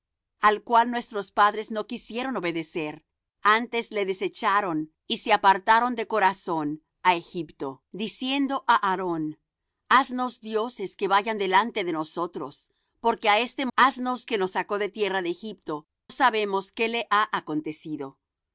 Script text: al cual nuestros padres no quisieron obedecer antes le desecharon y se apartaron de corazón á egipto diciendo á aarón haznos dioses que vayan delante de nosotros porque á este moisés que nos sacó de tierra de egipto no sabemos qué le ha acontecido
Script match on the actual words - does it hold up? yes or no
no